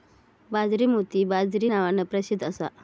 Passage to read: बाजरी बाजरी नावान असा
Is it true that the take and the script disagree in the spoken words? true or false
true